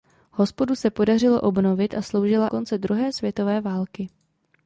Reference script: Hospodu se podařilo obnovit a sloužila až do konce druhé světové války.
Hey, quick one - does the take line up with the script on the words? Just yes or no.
no